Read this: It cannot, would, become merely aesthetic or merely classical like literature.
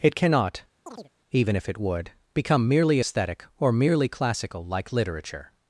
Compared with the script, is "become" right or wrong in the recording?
right